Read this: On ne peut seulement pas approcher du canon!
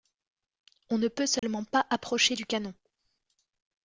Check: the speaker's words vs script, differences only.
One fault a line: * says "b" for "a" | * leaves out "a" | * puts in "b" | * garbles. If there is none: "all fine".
all fine